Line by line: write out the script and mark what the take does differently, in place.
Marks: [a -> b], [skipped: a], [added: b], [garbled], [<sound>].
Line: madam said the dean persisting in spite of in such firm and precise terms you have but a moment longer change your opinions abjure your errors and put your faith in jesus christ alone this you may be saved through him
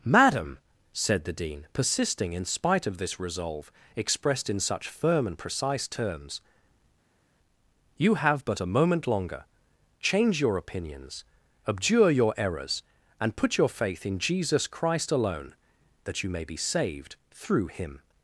madam said the dean persisting in spite of [added: this resolve expressed] in such firm and precise terms you have but a moment longer change your opinions abjure your errors and put your faith in jesus christ alone [this -> that] you may be saved through him